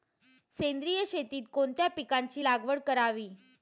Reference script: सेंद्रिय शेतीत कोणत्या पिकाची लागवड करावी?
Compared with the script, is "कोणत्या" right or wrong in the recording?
right